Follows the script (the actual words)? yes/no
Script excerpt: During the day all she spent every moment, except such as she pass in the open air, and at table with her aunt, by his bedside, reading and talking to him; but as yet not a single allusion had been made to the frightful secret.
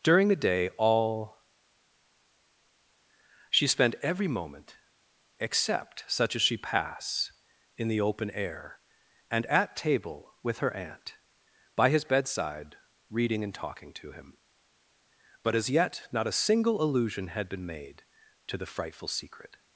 yes